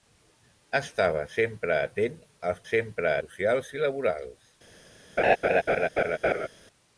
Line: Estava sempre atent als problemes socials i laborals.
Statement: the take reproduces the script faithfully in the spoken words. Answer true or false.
false